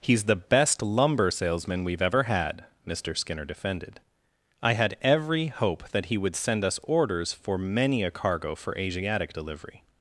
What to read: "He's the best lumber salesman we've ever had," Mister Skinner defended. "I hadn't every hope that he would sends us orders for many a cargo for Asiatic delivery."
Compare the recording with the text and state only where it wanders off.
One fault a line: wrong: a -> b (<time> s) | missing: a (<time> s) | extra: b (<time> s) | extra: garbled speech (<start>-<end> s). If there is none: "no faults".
wrong: hadn't -> had (4.7 s)
wrong: sends -> send (6.4 s)